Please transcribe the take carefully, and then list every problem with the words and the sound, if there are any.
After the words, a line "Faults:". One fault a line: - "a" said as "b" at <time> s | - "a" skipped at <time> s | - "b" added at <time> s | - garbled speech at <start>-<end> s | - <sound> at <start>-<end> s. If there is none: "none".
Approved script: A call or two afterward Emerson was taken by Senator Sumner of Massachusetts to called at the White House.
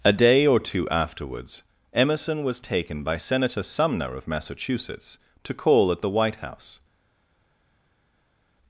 A day or two afterwards Emerson was taken by Senator Sumner of Massachusetts to call at the White House.
Faults:
- "call" said as "day" at 0.1 s
- "afterward" said as "afterwards" at 0.9 s
- "called" said as "call" at 5.5 s